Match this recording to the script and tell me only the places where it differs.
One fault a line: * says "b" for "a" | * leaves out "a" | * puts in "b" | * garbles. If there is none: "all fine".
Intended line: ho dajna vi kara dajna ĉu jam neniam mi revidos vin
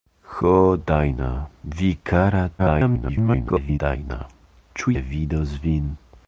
* garbles
* leaves out "jam neniam mi"